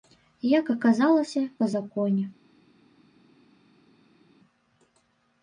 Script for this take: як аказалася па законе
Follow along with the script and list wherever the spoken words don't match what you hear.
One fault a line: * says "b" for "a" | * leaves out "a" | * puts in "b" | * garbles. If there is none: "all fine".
all fine